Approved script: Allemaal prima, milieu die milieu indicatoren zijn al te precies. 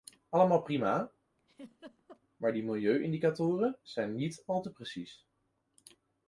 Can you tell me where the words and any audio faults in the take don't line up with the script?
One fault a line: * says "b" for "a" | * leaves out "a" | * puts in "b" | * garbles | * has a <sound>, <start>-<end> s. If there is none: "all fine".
* has a laugh, 1.4-2.2 s
* says "maar" for "milieu"
* puts in "niet"